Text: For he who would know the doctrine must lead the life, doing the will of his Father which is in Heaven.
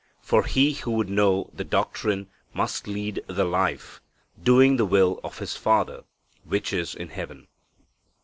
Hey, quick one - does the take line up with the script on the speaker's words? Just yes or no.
yes